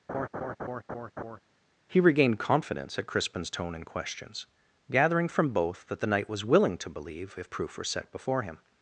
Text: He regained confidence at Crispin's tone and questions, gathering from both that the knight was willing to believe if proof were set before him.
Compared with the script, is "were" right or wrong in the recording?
right